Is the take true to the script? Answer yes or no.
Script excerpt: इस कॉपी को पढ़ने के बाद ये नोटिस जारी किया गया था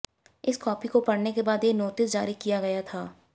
yes